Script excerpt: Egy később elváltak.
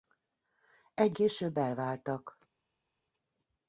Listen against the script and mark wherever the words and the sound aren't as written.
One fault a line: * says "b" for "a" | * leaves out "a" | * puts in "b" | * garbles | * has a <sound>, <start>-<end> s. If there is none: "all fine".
all fine